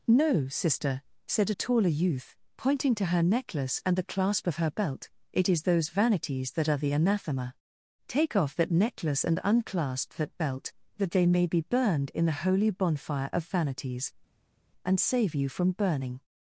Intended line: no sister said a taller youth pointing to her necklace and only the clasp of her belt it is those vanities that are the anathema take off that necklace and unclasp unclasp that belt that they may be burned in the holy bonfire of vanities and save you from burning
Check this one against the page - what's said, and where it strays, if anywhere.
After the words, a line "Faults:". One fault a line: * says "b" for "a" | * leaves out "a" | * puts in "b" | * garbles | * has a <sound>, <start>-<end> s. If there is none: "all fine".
no sister said a taller youth pointing to her necklace and the clasp of her belt it is those vanities that are the anathema take off that necklace and unclasp that belt that they may be burned in the holy bonfire of vanities and save you from burning
Faults:
* leaves out "only"
* leaves out "unclasp"